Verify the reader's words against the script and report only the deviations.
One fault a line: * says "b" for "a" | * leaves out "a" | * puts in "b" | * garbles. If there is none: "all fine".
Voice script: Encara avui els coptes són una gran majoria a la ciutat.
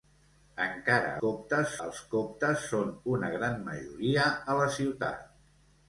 * says "coptes" for "avui"